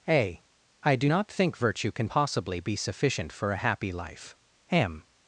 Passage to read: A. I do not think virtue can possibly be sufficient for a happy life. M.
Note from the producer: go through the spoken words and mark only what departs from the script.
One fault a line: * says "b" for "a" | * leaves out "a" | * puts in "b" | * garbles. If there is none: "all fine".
all fine